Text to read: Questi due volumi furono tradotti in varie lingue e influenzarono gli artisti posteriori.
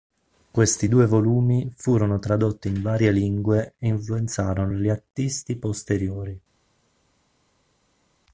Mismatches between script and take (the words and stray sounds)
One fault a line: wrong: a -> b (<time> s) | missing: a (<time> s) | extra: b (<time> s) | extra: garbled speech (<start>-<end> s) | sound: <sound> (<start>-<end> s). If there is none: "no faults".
no faults